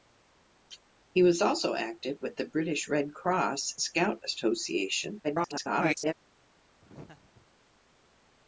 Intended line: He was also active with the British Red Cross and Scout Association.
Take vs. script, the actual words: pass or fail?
fail